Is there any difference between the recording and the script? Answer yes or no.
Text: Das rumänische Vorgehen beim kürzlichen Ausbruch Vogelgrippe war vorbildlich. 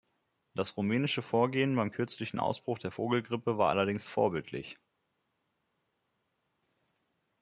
yes